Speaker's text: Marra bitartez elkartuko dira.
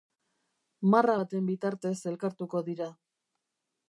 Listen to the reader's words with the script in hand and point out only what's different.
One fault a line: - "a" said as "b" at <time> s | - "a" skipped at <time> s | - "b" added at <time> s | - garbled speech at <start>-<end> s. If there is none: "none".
- "baten" added at 1.2 s